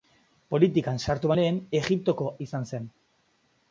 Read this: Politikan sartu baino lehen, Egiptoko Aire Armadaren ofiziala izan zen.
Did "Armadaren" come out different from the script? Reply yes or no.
yes